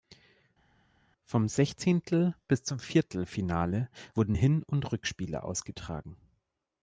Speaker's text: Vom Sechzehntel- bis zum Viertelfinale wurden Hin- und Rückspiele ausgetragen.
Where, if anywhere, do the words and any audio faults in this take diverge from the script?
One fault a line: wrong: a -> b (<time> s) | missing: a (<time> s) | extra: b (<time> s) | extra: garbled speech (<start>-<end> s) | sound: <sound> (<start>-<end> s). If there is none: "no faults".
no faults